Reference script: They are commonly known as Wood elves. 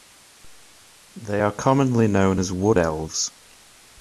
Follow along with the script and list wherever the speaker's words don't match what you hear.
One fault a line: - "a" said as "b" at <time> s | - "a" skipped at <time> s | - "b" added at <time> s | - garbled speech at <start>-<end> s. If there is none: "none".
none